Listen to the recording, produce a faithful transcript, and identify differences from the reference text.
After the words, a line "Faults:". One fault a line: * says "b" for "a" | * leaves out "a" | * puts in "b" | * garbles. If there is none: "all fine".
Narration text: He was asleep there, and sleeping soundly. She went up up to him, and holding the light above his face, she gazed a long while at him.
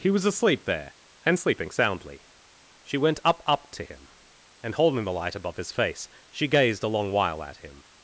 He was asleep there, and sleeping soundly. She went up up to him, and holding the light above his face, she gazed a long while at him.
Faults:
all fine